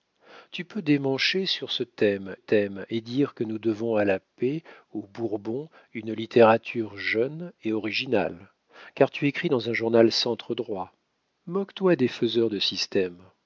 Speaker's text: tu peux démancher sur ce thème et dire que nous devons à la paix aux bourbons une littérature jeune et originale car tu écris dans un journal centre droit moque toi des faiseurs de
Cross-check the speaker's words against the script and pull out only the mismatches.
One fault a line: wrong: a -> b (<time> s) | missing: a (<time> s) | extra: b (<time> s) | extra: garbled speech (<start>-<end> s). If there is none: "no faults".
extra: thème (2.3 s)